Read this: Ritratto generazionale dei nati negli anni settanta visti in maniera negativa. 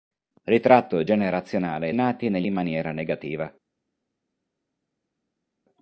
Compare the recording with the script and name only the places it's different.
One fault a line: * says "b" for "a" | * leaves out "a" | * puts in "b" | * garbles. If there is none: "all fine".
* leaves out "dei"
* leaves out "anni settanta visti"